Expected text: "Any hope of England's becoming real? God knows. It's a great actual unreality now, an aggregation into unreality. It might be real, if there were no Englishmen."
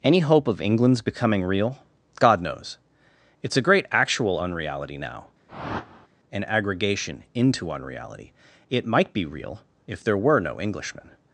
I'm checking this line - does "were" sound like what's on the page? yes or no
yes